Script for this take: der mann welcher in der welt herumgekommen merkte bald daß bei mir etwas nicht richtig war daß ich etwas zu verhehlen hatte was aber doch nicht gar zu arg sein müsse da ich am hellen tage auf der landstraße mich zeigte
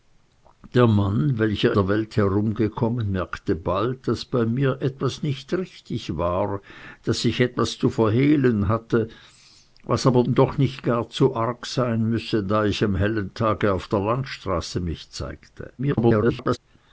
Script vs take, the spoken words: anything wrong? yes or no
yes